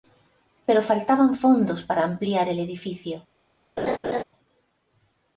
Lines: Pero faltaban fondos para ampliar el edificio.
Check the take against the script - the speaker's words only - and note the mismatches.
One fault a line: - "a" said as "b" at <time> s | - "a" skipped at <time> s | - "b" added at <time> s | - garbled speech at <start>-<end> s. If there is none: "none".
none